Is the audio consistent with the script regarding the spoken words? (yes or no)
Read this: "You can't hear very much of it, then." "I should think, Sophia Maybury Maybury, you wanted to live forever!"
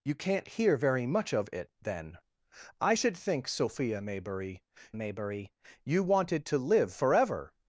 yes